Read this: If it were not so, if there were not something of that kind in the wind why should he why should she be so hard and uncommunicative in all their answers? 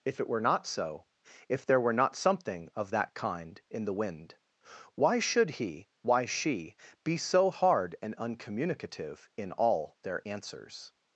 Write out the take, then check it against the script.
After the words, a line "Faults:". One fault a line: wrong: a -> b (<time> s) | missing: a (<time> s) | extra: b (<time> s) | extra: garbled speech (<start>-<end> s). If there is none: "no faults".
If it were not so, if there were not something of that kind in the wind why should he why she be so hard and uncommunicative in all their answers?
Faults:
missing: should (6.2 s)